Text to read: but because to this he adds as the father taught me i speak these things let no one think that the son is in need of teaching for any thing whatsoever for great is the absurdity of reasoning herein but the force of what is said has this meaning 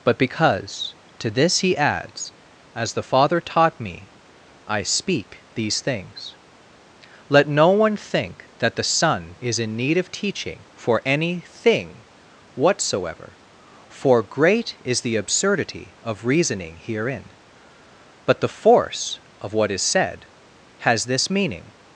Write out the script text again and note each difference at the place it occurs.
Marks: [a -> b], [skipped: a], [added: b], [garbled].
but because to this he adds as the father taught me i speak these things let no one think that the son is in need of teaching for any thing whatsoever for great is the absurdity of reasoning herein but the force of what is said has this meaning